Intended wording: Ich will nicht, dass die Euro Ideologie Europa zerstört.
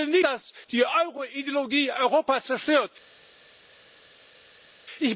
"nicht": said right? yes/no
no